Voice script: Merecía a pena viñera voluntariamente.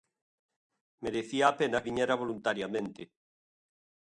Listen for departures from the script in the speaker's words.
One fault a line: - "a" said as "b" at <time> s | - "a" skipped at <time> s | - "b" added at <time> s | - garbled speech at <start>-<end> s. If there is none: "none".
none